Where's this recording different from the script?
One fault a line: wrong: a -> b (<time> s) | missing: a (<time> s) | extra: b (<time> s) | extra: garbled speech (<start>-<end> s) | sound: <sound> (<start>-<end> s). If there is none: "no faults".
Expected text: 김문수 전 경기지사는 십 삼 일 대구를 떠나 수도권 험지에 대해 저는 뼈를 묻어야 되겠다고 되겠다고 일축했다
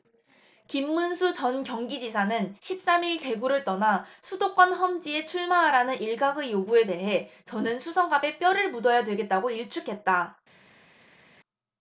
extra: 출마하라는 일각의 요구에 (5.2 s)
extra: 수성갑에 (7.8 s)
missing: 되겠다고 (9.5 s)